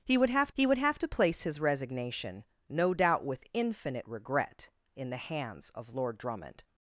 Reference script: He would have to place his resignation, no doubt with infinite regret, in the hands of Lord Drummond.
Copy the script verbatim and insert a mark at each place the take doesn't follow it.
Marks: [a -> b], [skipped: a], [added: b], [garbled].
He would have [added: he would have] to place his resignation, no doubt with infinite regret, in the hands of Lord Drummond.